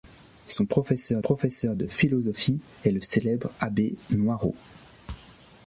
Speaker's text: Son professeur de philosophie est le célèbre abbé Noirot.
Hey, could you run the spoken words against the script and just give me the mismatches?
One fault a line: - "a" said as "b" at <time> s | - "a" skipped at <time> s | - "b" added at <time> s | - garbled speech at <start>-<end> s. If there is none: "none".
- "professeur" added at 1.2 s